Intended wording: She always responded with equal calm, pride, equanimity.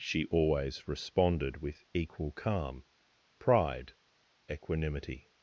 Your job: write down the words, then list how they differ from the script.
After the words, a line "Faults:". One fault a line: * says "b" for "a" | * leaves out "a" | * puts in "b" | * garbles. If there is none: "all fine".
She always responded with equal calm, pride, equanimity.
Faults:
all fine